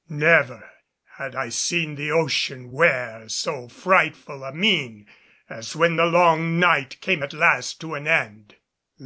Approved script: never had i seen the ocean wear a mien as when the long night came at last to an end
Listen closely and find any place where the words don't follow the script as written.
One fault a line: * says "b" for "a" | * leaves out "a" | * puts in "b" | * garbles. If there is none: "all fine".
* puts in "so frightful"